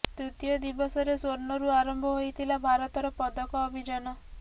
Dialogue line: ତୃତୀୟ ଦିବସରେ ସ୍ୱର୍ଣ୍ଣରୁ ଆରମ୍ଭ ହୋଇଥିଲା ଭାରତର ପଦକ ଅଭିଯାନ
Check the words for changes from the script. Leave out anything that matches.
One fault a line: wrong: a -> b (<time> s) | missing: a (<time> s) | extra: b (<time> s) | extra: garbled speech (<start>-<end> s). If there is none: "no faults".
no faults